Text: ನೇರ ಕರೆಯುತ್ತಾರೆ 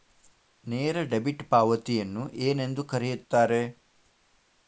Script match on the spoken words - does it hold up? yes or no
no